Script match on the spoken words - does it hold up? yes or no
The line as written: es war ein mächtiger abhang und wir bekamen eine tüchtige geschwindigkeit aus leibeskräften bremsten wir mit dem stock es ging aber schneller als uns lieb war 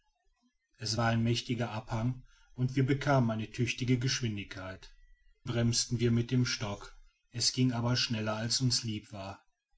no